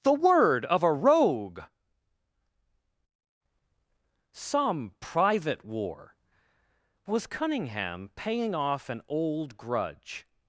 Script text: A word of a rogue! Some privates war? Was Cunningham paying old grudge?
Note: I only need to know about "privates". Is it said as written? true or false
false